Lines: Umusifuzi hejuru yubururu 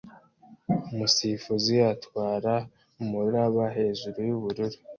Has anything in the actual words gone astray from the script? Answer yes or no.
yes